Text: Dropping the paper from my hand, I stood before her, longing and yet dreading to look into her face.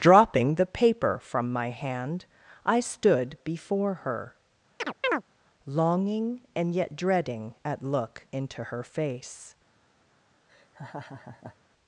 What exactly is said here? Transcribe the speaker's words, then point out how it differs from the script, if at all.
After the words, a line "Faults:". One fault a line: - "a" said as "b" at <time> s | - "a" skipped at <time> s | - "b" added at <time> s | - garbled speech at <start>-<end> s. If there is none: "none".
Dropping the paper from my hand, I stood before her, longing and yet dreading at look into her face.
Faults:
- "to" said as "at" at 7.6 s